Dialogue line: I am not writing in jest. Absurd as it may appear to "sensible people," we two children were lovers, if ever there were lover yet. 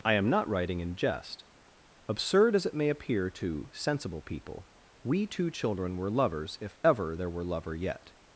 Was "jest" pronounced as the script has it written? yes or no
yes